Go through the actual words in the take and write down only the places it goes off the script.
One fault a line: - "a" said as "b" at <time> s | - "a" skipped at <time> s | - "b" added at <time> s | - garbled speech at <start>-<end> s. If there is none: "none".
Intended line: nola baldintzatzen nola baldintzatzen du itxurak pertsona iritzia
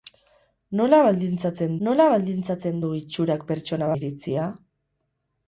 none